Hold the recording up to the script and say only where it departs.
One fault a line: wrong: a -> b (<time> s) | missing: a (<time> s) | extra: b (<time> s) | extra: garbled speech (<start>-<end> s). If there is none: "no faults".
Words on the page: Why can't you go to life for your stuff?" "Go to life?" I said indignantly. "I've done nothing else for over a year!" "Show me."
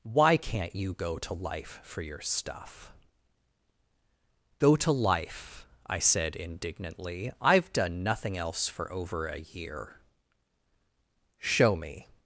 no faults